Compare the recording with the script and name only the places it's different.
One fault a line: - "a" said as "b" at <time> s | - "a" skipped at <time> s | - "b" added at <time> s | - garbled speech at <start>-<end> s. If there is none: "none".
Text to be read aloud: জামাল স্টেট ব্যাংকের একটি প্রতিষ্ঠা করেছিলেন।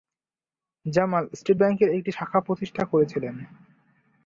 - "শাখা" added at 2.1 s